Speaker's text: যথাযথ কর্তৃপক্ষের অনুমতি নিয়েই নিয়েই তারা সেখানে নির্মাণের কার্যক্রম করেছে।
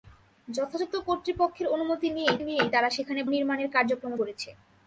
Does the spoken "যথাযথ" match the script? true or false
true